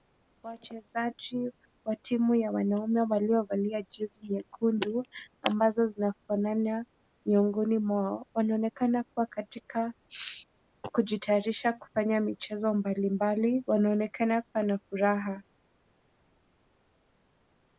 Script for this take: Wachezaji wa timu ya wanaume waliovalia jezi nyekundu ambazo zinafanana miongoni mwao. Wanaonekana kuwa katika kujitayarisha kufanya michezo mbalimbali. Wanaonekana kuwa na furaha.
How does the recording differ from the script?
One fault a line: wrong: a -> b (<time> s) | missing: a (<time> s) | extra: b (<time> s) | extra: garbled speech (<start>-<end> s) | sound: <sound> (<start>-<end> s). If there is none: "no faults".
no faults